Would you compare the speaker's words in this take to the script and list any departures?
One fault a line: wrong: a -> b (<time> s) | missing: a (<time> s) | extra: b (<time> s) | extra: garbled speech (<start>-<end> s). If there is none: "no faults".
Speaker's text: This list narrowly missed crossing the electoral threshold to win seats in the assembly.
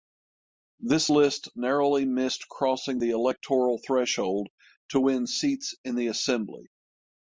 no faults